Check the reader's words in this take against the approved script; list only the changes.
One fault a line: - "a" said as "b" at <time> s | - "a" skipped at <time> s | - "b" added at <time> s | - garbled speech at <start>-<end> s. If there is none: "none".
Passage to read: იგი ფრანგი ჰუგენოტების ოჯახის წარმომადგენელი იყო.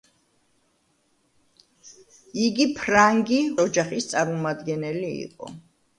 - "ჰუგენოტების" skipped at 3.4 s